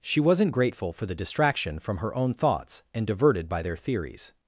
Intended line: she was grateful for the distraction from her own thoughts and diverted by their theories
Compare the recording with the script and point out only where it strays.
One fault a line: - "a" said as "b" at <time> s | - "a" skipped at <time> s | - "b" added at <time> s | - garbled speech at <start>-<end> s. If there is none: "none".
- "was" said as "wasn't" at 0.2 s